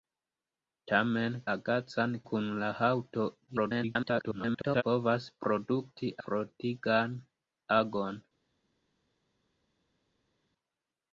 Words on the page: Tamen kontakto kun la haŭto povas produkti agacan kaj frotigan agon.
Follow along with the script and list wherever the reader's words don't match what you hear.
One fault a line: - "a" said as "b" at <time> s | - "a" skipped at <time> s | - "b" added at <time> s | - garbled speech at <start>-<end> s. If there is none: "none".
- "kontakto" said as "agacan" at 1.6 s
- garbled speech at 3.5-4.8 s
- "agacan kaj" skipped at 6.1 s